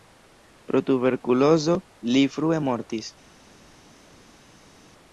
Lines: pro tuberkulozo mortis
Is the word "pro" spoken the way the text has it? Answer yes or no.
yes